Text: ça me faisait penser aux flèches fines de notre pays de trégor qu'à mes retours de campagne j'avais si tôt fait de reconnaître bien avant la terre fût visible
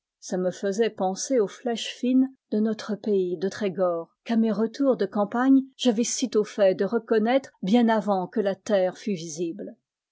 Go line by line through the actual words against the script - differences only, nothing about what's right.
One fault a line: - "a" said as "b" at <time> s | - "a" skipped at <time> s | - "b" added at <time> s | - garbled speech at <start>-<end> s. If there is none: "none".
- "que" added at 8.3 s